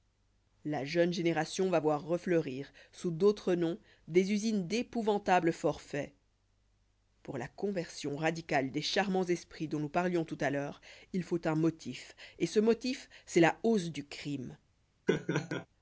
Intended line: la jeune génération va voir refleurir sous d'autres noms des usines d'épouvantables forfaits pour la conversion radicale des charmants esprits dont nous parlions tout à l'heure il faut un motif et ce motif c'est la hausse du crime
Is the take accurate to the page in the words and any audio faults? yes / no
no